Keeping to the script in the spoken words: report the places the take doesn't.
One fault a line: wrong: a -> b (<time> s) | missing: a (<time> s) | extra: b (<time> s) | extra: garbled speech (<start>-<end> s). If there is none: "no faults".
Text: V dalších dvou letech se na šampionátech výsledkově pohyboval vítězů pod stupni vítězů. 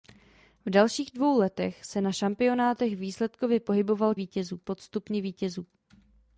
no faults